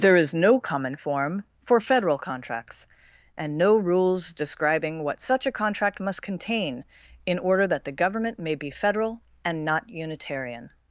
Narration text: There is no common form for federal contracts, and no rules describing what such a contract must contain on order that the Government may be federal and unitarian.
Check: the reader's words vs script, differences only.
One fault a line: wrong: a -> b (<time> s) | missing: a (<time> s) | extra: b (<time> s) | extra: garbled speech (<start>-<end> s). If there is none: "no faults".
wrong: on -> in (7.3 s)
extra: not (9.6 s)